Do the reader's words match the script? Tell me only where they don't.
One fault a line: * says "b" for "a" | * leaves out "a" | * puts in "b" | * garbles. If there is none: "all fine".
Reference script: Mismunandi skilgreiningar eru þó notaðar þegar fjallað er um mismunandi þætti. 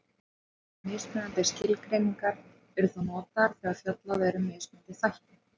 all fine